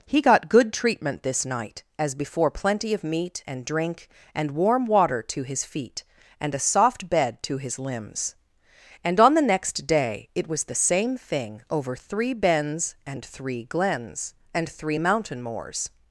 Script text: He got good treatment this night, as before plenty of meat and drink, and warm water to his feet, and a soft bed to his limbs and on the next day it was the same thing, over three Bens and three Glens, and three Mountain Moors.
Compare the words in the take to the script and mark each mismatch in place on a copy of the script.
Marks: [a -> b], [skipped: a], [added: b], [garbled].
He got good treatment this night, as before plenty of meat and drink, and warm water to his feet, and a soft bed to his limbs and on the next day it was the same thing, over three Bens and three Glens, and three Mountain Moors.